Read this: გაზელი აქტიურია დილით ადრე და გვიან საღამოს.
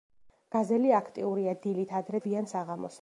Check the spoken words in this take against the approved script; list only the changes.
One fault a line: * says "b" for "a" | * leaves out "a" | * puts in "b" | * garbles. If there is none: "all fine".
* leaves out "და"